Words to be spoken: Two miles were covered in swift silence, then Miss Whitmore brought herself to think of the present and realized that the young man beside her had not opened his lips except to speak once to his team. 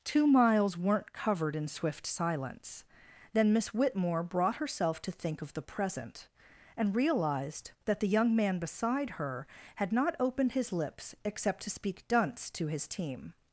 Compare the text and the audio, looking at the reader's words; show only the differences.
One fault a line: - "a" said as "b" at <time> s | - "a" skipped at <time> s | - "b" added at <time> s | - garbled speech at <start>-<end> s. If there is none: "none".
- "were" said as "weren't" at 0.8 s
- "once" said as "dunce" at 12.1 s